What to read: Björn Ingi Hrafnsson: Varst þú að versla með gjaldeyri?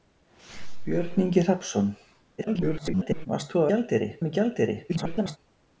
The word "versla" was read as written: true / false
false